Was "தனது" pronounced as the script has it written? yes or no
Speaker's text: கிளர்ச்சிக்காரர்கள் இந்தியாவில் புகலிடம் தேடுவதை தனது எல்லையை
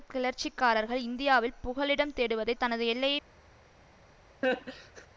yes